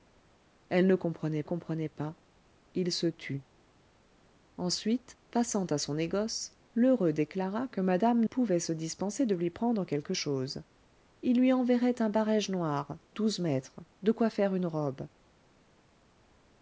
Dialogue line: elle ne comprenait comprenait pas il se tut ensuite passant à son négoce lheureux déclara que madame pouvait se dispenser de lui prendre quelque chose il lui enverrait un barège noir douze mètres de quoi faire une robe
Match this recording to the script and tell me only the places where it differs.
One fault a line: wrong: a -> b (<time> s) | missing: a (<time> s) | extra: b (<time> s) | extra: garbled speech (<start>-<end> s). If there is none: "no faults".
no faults